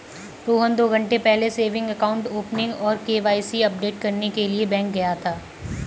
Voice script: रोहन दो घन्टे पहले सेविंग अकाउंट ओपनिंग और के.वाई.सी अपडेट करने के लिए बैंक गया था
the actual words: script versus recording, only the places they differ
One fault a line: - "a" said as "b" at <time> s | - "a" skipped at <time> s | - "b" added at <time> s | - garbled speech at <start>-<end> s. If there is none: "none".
none